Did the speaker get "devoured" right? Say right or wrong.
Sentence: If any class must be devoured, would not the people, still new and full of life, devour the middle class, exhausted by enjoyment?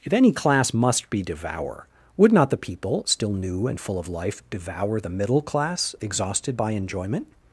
wrong